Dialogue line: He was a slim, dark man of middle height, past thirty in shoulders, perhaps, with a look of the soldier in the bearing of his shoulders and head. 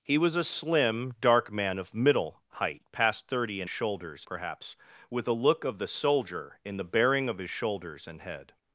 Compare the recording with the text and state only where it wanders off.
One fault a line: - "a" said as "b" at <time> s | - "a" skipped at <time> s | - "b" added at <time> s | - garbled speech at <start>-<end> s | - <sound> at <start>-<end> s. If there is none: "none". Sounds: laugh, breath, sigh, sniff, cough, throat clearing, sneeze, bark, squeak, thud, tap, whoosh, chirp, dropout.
none